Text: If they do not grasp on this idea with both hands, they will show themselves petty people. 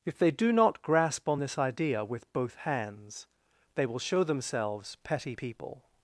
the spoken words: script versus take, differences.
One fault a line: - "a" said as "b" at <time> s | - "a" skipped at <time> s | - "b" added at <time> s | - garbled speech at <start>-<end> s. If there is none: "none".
none